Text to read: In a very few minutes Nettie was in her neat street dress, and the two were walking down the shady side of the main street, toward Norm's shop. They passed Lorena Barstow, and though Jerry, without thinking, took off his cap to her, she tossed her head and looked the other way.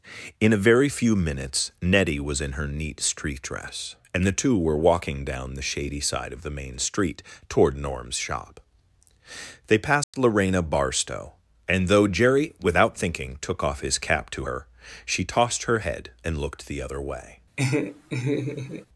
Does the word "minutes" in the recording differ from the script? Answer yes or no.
no